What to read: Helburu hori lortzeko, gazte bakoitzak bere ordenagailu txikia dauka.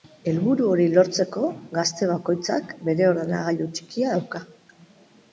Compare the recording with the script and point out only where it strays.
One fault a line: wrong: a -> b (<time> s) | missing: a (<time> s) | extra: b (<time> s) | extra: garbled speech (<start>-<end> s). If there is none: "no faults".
no faults